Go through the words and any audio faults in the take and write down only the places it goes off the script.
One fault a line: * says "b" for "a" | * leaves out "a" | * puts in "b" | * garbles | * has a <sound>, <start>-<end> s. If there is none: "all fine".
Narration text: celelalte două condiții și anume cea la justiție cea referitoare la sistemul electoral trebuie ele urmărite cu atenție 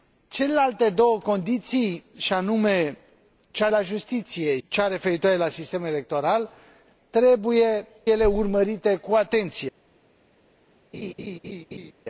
* has a laugh, 10.9-11.9 s